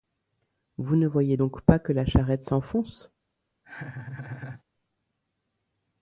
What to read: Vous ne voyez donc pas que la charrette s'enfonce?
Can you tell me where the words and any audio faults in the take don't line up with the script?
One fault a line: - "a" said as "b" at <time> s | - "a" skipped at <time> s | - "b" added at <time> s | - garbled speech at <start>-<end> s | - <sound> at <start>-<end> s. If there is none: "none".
- laugh at 3.6-4.6 s